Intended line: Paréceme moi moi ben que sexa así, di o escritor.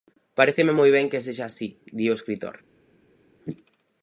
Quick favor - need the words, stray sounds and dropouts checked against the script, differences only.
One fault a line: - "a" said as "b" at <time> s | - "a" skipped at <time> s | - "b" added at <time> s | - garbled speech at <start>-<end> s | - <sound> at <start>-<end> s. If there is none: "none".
- "moi" skipped at 0.9 s